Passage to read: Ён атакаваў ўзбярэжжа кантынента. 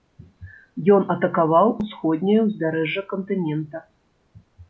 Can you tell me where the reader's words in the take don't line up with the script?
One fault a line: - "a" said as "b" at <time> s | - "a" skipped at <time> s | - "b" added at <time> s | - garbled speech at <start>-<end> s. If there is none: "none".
- "усходняе" added at 1.8 s